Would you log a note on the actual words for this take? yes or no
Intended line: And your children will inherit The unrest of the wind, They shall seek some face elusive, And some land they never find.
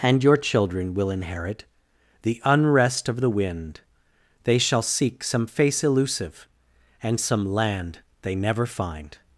no